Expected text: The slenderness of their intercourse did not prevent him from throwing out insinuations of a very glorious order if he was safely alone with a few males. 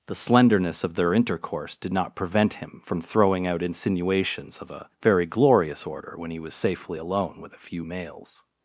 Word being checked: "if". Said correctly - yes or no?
no